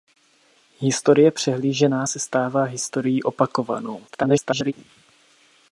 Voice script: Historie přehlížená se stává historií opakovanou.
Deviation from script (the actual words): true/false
true